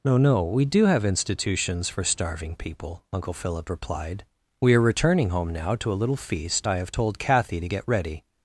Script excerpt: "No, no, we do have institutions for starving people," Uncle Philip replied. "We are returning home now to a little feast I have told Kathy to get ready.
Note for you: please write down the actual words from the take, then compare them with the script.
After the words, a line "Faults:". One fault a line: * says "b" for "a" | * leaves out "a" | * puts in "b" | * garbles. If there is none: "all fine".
"No, no, we do have institutions for starving people," Uncle Philip replied. "We are returning home now to a little feast I have told Kathy to get ready.
Faults:
all fine